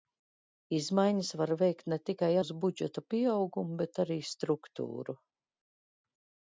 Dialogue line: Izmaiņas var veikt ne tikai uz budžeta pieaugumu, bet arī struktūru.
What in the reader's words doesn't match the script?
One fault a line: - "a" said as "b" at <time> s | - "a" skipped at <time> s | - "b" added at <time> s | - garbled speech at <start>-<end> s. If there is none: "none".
none